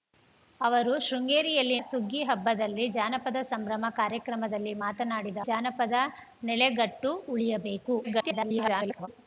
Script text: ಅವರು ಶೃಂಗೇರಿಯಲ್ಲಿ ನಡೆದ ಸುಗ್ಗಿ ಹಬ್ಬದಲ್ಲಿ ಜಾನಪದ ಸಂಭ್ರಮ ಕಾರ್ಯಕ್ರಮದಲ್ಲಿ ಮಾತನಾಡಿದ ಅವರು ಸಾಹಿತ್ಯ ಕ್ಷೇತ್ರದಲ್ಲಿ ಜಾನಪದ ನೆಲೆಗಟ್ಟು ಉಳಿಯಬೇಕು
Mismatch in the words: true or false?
true